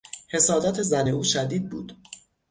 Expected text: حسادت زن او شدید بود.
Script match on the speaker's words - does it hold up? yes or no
yes